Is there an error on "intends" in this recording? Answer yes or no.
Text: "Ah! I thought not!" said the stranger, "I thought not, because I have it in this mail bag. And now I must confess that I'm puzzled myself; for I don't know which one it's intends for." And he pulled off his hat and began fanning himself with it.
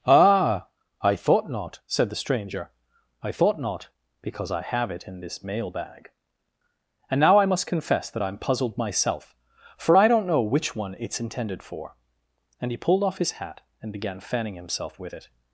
yes